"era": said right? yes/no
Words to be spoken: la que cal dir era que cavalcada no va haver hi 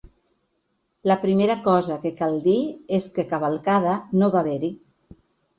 no